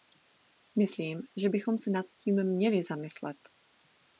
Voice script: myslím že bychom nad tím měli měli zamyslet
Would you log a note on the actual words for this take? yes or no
yes